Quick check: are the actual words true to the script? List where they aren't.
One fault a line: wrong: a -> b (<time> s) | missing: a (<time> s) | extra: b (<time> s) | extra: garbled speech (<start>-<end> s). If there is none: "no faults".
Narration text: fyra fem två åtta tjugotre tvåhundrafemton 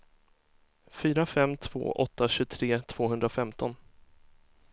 no faults